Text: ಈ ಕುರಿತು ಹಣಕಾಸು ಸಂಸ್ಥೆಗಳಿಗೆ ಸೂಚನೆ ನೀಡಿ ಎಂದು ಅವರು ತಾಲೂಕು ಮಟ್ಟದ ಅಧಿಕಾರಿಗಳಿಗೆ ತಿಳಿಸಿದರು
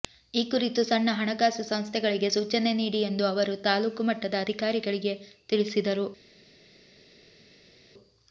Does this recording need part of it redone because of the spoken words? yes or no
yes